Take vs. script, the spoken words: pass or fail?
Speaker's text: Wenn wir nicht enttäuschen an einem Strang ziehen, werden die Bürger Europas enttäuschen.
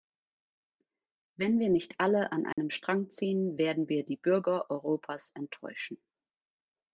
fail